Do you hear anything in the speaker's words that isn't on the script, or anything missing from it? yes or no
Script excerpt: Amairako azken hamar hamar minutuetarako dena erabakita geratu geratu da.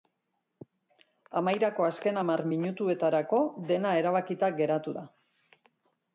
yes